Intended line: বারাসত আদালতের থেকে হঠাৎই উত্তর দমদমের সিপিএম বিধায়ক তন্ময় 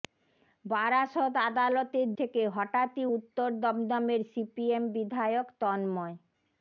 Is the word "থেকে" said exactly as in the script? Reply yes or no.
yes